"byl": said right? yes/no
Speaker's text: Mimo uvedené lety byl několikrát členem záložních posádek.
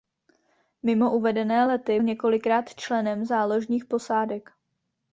no